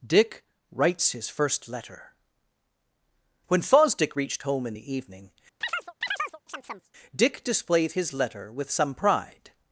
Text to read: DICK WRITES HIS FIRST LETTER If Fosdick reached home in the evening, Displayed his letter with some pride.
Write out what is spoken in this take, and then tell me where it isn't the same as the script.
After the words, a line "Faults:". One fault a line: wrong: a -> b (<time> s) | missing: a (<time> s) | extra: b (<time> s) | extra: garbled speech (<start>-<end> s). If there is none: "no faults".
DICK WRITES HIS FIRST LETTER When Fosdick reached home in the evening, Dick displayed his letter with some pride.
Faults:
wrong: If -> When (3.5 s)
extra: Dick (7.1 s)